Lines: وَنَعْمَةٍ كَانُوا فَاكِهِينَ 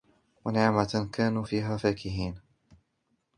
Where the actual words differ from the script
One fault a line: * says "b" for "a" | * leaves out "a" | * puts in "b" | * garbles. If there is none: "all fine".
* puts in "فِيهَا"